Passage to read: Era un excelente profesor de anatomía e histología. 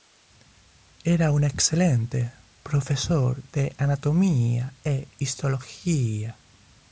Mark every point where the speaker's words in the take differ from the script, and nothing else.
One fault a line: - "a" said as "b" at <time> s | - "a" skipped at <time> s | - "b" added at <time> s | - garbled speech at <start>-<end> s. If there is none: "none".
none